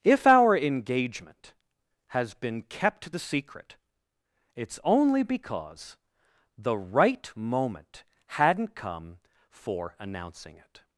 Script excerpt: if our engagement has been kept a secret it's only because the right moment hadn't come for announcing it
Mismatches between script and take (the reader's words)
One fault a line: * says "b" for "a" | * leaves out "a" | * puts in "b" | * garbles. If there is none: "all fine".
* says "the" for "a"